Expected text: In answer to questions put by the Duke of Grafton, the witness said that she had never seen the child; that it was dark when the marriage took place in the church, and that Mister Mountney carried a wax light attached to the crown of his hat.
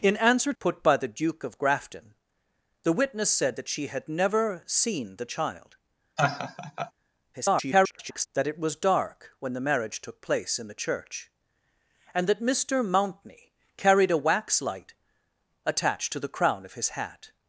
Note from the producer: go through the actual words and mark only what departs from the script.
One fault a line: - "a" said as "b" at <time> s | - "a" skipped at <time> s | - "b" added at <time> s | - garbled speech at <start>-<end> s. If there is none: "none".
- "to questions" skipped at 0.5 s
- garbled speech at 7.3-8.3 s